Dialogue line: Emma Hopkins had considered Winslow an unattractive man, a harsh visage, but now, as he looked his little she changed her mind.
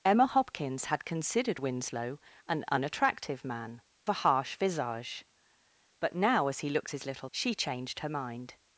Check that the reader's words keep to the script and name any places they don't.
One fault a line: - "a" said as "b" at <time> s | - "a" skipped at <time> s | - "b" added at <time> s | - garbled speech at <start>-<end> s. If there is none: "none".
none